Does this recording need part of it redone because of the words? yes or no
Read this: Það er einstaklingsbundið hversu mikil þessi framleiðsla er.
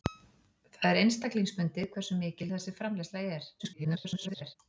yes